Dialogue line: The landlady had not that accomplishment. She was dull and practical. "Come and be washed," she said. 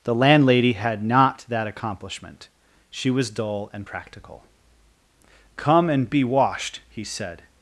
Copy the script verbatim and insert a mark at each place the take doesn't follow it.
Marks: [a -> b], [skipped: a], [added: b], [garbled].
The landlady had not that accomplishment. She was dull and practical. "Come and be washed," [she -> he] said.